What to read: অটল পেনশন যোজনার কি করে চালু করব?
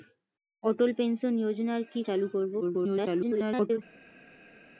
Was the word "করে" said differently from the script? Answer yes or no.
yes